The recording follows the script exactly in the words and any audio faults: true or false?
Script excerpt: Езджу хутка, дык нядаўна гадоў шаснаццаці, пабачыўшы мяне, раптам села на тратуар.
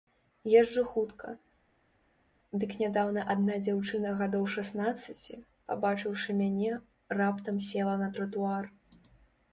false